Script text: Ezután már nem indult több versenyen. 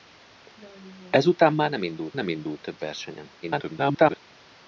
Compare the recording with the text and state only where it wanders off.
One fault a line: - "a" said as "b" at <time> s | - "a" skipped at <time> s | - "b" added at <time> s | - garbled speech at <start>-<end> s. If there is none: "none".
- "nem indult" added at 2.1 s
- garbled speech at 3.4-4.2 s